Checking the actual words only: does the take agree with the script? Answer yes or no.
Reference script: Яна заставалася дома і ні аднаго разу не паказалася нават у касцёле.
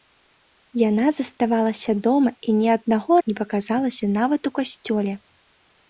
no